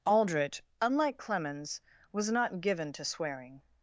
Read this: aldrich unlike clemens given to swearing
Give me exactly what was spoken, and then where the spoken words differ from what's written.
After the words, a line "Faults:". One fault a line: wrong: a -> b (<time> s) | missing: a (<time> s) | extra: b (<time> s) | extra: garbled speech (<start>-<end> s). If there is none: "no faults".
aldrich unlike clemens was not given to swearing
Faults:
extra: was not (2.1 s)